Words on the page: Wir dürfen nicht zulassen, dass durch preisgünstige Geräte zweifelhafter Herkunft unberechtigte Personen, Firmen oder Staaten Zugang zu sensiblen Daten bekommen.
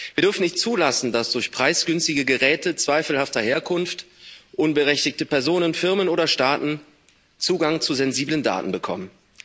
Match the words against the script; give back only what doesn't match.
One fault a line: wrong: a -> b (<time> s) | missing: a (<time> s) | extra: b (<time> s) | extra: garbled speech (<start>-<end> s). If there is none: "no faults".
no faults